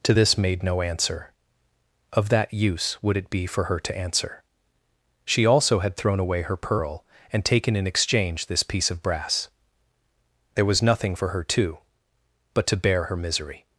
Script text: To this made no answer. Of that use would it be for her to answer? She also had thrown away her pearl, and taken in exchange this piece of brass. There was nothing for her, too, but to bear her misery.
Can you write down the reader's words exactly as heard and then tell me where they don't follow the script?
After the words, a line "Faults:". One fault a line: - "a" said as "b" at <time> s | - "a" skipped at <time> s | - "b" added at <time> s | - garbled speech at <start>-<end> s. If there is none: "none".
To this made no answer. Of that use would it be for her to answer? She also had thrown away her pearl, and taken in exchange this piece of brass. There was nothing for her, too, but to bear her misery.
Faults:
none